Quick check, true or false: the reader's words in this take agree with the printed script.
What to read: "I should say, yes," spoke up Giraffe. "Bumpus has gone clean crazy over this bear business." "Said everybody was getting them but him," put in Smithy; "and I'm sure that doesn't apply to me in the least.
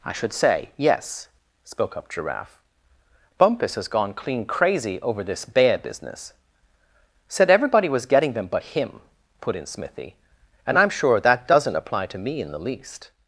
true